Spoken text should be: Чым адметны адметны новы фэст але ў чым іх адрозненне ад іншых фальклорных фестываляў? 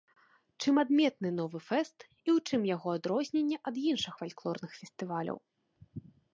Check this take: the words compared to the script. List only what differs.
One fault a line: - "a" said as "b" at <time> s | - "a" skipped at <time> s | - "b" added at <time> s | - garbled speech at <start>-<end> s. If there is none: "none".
- "адметны" skipped at 1.3 s
- "але" said as "і" at 2.1 s
- "іх" said as "яго" at 2.8 s